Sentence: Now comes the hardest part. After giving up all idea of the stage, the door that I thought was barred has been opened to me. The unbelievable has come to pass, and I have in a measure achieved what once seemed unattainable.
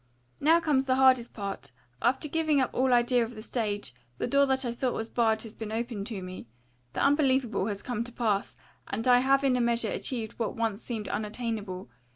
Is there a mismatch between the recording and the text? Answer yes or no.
no